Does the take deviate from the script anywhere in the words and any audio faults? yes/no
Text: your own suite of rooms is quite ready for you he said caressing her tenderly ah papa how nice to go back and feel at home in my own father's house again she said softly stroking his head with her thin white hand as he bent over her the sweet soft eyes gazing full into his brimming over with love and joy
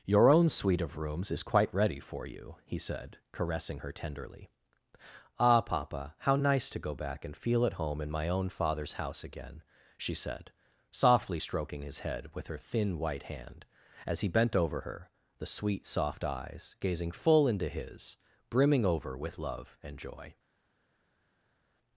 no